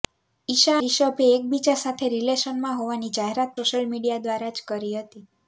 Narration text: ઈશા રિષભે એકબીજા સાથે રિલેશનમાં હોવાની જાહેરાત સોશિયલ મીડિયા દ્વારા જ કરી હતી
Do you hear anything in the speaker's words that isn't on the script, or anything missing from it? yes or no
no